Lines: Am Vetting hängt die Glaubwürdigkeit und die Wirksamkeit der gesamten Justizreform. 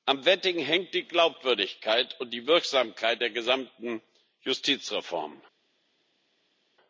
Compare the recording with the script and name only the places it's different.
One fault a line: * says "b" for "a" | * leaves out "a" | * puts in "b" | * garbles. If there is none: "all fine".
all fine